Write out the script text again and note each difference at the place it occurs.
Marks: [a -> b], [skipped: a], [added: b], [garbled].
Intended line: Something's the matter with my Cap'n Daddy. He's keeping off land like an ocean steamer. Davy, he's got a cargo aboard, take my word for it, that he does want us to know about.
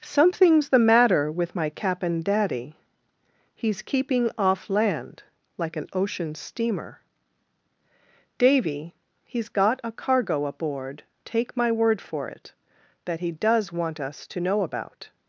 Something's the matter with my Cap'n Daddy. He's keeping off land like an ocean steamer. Davy, he's got a cargo aboard, take my word for it, that he does want us to know about.